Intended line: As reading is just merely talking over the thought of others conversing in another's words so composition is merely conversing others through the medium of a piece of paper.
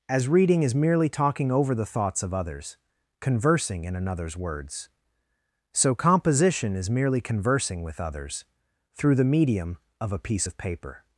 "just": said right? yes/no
no